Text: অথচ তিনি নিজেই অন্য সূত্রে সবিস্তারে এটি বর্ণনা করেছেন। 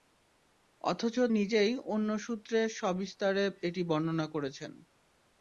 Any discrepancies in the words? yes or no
yes